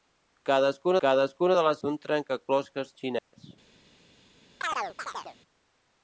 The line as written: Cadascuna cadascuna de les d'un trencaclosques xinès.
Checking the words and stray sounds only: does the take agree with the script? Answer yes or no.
no